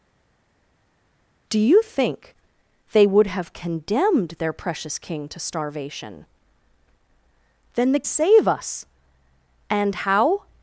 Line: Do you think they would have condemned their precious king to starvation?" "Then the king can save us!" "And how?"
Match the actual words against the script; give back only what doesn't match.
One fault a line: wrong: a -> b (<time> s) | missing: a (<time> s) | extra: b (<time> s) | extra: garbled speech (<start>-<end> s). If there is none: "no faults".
missing: king can (8.0 s)